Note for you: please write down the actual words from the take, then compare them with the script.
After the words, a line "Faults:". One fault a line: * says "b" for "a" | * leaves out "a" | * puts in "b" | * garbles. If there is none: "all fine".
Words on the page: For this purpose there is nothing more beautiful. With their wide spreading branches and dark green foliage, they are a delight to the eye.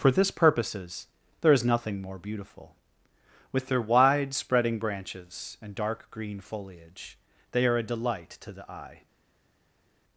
For this purposes there is nothing more beautiful. With their wide spreading branches and dark green foliage, they are a delight to the eye.
Faults:
* says "purposes" for "purpose"